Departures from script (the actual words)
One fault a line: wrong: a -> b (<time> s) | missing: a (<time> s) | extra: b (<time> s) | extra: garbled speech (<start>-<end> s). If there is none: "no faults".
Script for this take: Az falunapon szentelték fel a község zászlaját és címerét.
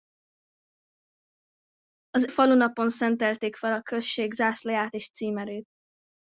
no faults